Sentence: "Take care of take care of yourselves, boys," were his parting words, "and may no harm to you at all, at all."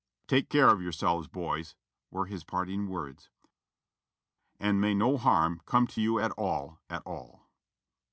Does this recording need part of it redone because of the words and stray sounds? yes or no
yes